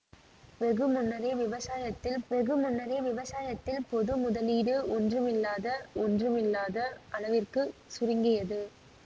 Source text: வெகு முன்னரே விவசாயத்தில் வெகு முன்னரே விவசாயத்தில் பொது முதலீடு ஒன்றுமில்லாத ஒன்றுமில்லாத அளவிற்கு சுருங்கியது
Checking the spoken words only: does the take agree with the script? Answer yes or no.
yes